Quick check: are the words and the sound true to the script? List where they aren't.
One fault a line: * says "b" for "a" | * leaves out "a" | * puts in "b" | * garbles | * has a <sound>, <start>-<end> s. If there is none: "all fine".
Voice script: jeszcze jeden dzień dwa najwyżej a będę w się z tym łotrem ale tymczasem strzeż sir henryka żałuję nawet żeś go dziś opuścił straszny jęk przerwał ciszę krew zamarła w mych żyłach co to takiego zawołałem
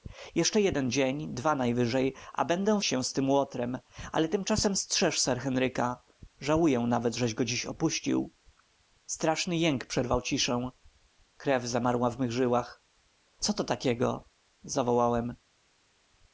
all fine